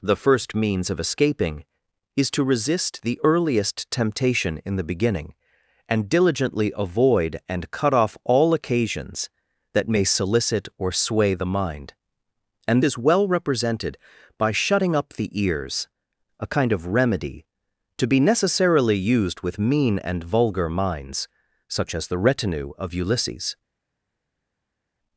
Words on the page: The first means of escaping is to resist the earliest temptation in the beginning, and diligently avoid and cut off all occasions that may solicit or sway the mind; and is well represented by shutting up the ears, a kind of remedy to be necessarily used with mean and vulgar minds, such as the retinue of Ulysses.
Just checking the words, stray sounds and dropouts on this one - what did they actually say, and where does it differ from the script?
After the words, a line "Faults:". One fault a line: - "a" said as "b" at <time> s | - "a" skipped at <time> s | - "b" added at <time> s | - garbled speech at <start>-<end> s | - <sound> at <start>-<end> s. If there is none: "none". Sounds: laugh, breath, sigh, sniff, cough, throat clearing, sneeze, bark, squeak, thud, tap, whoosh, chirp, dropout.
The first means of escaping is to resist the earliest temptation in the beginning, and diligently avoid and cut off all occasions that may solicit or sway the mind; and is well represented by shutting up the ears, a kind of remedy to be necessarily used with mean and vulgar minds, such as the retinue of Ulysses.
Faults:
none